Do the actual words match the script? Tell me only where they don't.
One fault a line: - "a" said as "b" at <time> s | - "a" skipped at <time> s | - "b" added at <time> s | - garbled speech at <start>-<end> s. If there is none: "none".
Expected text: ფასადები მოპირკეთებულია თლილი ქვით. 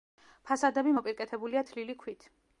none